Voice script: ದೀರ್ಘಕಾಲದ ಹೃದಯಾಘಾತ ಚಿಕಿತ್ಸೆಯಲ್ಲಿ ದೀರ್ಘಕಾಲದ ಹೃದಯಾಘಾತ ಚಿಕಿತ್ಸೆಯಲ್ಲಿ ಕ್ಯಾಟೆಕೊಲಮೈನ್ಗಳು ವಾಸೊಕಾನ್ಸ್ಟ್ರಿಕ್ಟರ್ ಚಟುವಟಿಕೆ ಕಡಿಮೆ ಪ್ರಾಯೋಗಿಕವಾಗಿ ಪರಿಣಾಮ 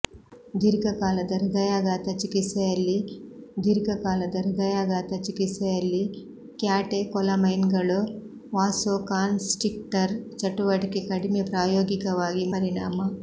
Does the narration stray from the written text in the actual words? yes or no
no